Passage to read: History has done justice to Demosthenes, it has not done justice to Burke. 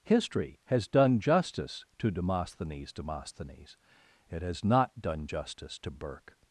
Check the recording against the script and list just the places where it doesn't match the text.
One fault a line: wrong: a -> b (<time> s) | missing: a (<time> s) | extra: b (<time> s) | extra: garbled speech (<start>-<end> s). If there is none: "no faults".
extra: Demosthenes (2.9 s)